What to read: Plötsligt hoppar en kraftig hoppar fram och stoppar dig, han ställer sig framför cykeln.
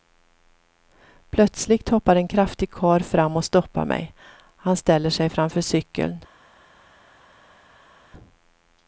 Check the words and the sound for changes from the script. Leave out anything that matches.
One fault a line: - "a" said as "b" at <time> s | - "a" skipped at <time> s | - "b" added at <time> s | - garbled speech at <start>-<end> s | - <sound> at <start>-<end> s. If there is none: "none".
- "hoppar" said as "karl" at 2.7 s
- "dig" said as "mig" at 3.9 s